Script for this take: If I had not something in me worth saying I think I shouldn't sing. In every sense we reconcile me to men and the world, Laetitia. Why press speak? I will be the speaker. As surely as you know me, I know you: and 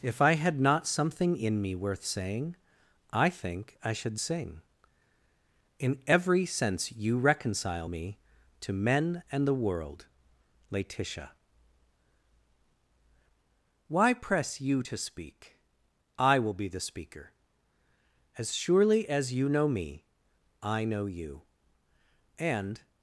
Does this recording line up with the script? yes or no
no